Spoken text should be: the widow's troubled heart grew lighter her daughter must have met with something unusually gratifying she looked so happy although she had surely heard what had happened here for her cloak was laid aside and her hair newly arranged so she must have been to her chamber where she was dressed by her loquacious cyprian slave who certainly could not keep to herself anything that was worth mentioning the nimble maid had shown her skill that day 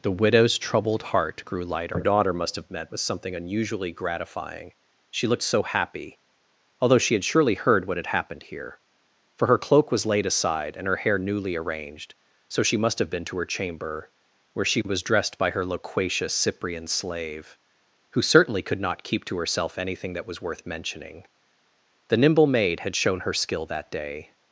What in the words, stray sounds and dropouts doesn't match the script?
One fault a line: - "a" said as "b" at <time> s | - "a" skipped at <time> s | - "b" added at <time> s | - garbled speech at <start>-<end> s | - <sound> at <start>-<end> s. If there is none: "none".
none